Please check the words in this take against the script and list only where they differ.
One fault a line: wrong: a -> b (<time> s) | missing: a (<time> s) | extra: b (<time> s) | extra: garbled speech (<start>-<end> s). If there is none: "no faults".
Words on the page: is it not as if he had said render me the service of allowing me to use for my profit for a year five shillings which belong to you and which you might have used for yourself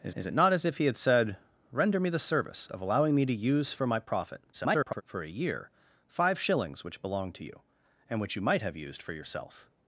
extra: is (0.1 s)
extra: garbled speech (4.5-5.0 s)